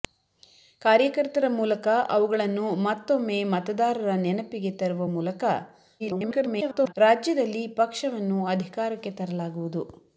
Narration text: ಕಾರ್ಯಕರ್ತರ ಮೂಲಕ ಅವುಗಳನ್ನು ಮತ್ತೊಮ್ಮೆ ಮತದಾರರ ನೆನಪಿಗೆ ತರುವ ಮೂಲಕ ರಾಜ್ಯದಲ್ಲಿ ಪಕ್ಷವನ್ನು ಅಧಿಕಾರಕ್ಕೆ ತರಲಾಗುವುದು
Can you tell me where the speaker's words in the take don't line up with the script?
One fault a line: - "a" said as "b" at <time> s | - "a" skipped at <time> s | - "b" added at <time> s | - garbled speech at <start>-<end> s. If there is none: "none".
- garbled speech at 6.0-6.9 s